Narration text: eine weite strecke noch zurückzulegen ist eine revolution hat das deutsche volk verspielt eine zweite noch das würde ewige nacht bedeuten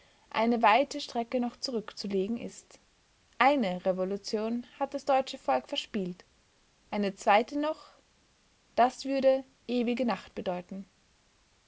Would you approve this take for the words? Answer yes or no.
yes